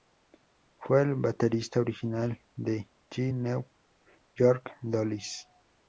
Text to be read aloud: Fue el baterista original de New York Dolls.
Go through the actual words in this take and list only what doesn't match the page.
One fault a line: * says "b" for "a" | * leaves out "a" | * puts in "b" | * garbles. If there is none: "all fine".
* puts in "The"